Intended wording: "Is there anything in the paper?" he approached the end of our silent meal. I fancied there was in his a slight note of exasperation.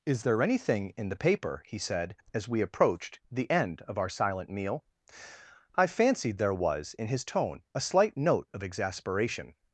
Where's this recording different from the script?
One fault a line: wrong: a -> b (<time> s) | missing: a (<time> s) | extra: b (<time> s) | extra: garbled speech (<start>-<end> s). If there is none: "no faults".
extra: said as we (1.8 s)
extra: tone (7.2 s)